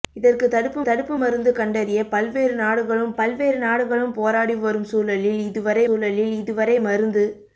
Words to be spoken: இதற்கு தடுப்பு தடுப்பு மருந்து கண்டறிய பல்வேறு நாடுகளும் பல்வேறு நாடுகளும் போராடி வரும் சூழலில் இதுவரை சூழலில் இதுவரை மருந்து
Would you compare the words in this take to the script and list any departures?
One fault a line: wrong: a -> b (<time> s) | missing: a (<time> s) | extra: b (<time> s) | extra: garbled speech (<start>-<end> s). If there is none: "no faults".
no faults